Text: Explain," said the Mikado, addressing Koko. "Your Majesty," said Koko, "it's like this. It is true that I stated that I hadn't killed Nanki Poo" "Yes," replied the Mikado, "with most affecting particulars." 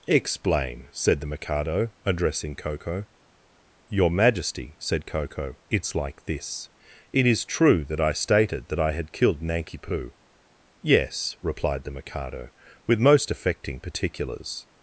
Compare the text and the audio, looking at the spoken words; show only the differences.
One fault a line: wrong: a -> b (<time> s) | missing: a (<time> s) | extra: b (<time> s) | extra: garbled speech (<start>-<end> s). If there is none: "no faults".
wrong: hadn't -> had (8.9 s)